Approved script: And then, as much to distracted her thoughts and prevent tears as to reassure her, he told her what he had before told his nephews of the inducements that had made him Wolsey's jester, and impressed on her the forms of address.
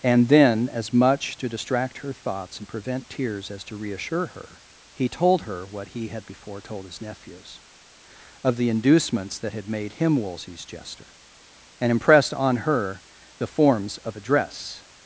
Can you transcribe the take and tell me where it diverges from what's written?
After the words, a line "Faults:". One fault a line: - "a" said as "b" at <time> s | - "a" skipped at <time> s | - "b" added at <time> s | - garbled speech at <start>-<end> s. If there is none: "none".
And then, as much to distract her thoughts and prevent tears as to reassure her, he told her what he had before told his nephews of the inducements that had made him Wolsey's jester, and impressed on her the forms of address.
Faults:
- "distracted" said as "distract" at 1.5 s